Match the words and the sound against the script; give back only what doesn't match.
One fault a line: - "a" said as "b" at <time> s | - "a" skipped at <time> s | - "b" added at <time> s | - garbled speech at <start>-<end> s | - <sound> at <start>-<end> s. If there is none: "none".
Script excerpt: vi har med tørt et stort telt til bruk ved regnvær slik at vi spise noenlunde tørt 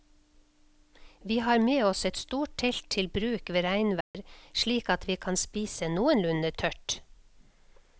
- "tørt" said as "oss" at 1.9 s
- dropout at 4.0-4.1 s
- "kan" added at 5.3 s